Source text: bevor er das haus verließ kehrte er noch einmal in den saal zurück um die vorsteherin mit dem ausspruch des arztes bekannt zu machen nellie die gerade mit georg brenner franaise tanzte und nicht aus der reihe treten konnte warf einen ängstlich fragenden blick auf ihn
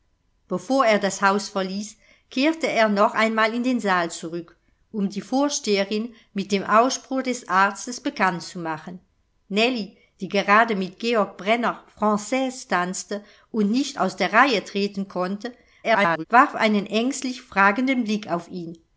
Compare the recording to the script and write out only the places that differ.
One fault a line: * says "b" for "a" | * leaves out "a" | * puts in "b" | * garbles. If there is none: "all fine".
* garbles